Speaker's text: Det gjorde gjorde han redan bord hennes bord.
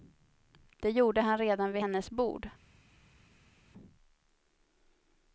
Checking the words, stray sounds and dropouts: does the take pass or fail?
fail